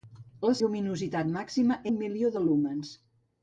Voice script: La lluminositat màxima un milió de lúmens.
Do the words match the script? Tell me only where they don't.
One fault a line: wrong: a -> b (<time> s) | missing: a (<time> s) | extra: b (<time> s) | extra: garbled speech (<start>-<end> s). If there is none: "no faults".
no faults